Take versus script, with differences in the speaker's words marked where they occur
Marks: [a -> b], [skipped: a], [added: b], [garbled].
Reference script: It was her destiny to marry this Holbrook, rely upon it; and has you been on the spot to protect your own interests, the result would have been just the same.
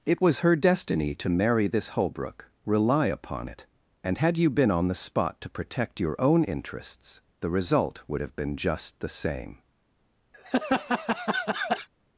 It was her destiny to marry this Holbrook, rely upon it; and [has -> had] you been on the spot to protect your own interests, the result would have been just the same.